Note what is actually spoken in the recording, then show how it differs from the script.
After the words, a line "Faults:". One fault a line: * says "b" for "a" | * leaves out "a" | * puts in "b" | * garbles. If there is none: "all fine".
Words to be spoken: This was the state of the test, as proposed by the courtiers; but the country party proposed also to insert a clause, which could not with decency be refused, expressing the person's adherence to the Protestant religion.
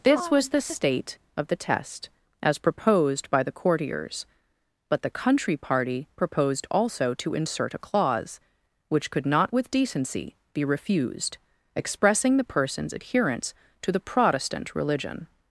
This was the state of the test, as proposed by the courtiers; but the country party proposed also to insert a clause, which could not with decency be refused, expressing the person's adherence to the Protestant religion.
Faults:
all fine